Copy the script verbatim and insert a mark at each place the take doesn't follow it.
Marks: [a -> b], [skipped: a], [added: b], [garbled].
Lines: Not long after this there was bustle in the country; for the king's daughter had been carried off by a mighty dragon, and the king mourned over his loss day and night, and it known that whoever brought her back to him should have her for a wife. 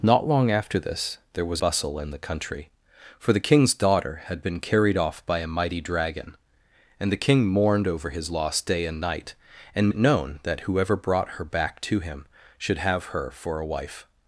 Not long after this there was bustle in the country; for the king's daughter had been carried off by a mighty dragon, and the king mourned over his loss day and night, and it known that whoever brought her back to him should have her for a wife.